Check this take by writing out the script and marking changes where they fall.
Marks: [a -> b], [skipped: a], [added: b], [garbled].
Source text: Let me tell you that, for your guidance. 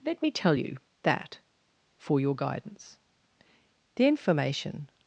Let me tell you that, for your guidance. [added: The information]